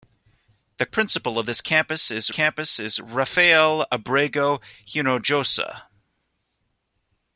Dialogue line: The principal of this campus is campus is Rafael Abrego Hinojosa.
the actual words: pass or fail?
pass